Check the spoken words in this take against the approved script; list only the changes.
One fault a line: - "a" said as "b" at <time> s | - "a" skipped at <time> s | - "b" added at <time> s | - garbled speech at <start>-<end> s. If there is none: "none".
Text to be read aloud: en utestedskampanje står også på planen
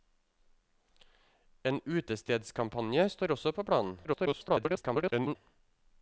- garbled speech at 4.0-5.4 s